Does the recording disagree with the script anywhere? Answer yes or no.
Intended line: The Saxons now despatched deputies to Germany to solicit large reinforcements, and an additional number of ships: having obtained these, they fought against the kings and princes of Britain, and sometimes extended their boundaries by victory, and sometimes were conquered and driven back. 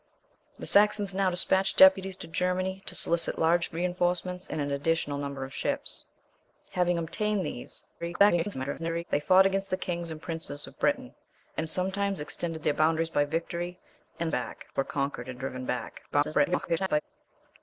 yes